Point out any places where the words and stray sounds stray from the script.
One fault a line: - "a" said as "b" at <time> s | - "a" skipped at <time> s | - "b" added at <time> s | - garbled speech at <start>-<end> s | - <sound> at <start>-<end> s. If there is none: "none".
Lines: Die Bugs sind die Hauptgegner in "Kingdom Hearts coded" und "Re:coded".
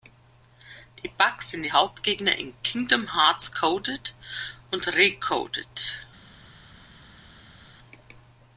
none